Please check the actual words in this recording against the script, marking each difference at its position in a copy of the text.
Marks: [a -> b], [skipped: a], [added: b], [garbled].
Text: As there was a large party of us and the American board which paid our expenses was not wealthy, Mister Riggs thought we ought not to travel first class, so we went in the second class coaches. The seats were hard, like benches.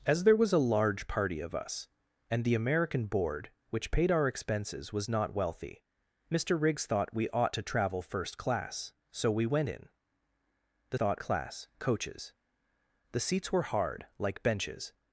As there was a large party of us and the American board which paid our expenses was not wealthy, Mister Riggs thought we ought [skipped: not] to travel first class, so we went in the [second -> thought] class coaches. The seats were hard, like benches.